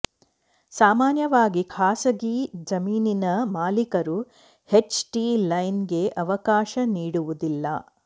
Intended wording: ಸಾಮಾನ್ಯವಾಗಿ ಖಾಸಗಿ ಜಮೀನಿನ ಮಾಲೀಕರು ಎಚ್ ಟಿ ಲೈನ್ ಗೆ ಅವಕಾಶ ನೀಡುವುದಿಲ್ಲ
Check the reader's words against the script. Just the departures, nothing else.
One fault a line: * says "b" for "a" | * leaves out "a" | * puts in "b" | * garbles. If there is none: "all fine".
all fine